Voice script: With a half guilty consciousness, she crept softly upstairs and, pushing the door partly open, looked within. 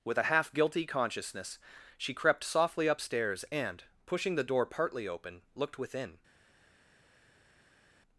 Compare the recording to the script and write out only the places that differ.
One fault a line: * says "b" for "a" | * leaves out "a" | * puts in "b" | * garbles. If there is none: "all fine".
all fine